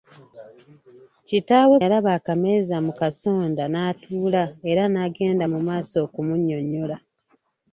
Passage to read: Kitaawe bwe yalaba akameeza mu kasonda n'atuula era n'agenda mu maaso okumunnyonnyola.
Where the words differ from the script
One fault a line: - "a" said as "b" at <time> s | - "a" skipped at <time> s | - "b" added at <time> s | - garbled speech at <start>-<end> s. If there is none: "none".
- "bwe" skipped at 1.8 s